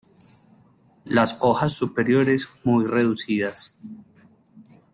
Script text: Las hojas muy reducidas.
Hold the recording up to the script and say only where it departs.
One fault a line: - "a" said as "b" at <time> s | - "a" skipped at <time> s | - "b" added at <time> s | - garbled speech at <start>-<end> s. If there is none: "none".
- "superiores" added at 1.7 s